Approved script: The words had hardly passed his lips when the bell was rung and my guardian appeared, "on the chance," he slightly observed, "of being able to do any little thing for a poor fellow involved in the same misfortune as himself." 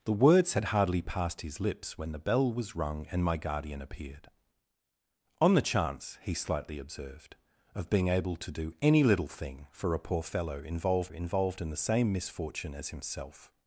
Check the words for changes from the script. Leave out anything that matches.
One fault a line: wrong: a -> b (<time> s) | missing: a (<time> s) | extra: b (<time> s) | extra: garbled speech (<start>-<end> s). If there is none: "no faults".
extra: involved (11.1 s)